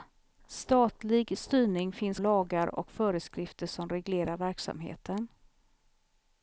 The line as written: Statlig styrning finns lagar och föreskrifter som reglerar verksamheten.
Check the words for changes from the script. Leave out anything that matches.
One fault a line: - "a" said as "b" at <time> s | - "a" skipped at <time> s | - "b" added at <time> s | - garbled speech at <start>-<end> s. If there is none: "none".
none